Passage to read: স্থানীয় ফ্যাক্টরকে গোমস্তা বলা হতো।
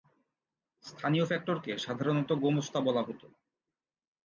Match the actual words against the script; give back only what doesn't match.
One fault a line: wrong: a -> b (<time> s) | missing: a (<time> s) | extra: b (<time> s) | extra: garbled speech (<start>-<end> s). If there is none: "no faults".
extra: সাধারণত (1.8 s)